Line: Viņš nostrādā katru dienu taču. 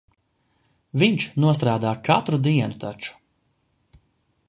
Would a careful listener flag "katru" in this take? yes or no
no